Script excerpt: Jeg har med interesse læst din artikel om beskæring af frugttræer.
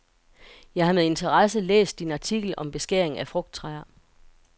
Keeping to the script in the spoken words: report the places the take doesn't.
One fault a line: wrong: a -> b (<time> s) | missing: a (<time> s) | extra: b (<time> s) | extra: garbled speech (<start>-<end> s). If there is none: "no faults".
no faults